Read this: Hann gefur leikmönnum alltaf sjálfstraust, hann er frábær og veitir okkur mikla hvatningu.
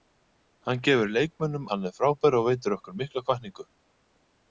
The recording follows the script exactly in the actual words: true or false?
false